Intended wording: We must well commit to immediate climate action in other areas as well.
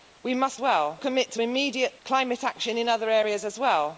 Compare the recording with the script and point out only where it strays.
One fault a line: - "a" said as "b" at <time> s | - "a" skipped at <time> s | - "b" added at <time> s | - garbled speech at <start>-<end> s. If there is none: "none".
none